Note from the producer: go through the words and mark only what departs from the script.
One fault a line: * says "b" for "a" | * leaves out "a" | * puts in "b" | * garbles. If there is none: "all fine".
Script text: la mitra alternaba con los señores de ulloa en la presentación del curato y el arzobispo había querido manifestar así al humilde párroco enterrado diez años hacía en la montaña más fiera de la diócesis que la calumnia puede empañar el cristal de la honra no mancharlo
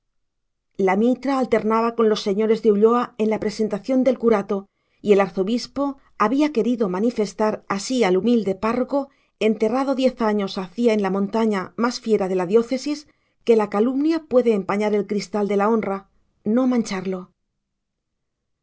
all fine